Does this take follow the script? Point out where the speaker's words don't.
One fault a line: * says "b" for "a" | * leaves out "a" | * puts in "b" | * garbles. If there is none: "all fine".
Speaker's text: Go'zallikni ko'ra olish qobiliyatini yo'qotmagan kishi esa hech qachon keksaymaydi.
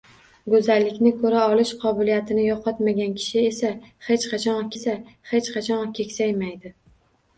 * puts in "esa hech qachon"